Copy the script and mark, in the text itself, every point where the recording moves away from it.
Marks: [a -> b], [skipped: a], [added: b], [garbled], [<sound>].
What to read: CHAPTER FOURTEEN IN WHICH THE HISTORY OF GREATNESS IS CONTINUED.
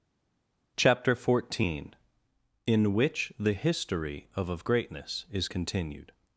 CHAPTER FOURTEEN IN WHICH THE HISTORY OF [added: OF] GREATNESS IS CONTINUED.